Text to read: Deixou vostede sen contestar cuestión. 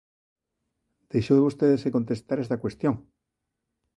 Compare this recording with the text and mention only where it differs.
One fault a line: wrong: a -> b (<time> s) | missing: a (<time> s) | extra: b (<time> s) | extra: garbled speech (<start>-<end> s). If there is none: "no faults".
extra: esta (2.4 s)